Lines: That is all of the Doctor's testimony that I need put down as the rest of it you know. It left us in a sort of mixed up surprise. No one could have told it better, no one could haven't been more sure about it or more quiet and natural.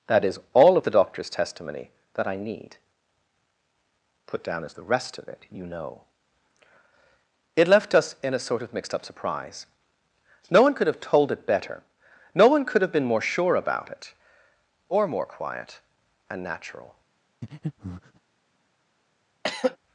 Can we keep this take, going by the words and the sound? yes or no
no